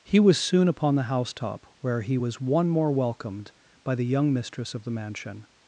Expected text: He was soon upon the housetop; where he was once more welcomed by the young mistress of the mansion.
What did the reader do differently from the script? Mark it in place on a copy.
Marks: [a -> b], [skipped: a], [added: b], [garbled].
He was soon upon the housetop; where he was [once -> one] more welcomed by the young mistress of the mansion.